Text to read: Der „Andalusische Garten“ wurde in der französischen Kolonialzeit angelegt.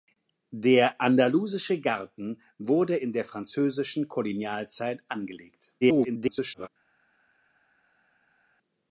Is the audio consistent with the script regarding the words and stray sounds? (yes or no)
no